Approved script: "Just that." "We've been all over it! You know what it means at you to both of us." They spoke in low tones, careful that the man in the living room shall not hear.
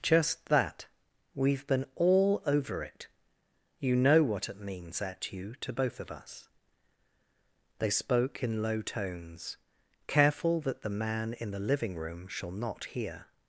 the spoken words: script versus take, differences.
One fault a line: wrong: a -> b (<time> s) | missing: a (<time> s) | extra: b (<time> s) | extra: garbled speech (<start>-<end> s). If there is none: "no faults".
no faults